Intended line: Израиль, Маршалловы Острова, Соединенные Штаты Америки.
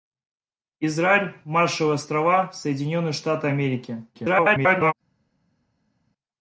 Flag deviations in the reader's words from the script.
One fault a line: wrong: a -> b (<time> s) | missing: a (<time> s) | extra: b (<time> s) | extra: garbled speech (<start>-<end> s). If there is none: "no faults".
extra: garbled speech (4.1-4.9 s)